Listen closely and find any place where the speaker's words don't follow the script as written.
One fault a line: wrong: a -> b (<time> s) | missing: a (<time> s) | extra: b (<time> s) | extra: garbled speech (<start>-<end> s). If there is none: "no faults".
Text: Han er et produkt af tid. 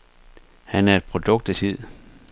no faults